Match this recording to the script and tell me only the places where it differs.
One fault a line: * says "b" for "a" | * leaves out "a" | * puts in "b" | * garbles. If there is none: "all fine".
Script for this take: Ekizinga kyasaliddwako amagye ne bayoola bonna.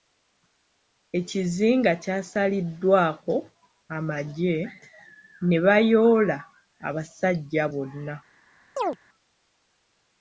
* puts in "abasajja"